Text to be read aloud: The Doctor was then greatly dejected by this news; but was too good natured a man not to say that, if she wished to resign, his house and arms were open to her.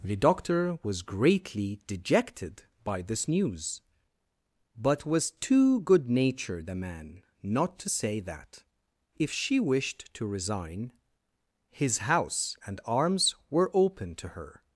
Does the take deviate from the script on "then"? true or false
true